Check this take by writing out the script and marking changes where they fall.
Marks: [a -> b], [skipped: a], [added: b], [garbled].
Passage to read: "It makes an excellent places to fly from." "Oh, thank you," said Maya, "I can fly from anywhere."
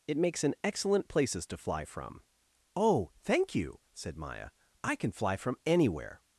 "It makes an excellent places to fly from." "Oh, thank you," said Maya, "I can fly from anywhere."